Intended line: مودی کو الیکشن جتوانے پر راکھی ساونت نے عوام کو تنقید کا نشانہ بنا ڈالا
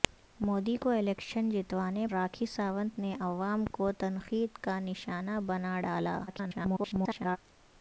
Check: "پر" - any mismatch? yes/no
yes